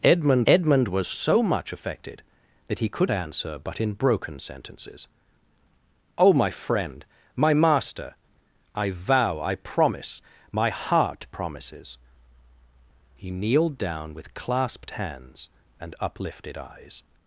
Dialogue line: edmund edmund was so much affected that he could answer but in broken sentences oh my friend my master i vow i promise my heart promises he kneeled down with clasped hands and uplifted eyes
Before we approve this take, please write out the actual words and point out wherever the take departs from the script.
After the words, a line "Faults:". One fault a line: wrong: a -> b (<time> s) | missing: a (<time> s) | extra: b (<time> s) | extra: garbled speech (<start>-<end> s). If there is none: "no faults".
edmund edmund was so much affected that he could answer but in broken sentences oh my friend my master i vow i promise my heart promises he kneeled down with clasped hands and uplifted eyes
Faults:
no faults